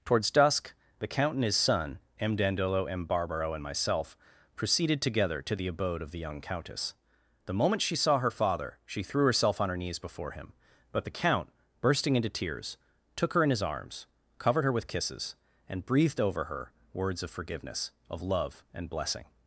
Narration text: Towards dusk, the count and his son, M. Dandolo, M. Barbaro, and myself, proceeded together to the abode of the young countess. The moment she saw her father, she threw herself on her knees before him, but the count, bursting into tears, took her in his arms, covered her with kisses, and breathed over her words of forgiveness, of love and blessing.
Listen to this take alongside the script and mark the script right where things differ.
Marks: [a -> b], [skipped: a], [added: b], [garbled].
Towards dusk, the count and his son, M. Dandolo, M. Barbaro, and myself, proceeded together to the abode of the young countess. The moment she saw her father, she threw herself on her knees before him, but the count, bursting into tears, took her in his arms, covered her with kisses, and breathed over her words of forgiveness, of love and blessing.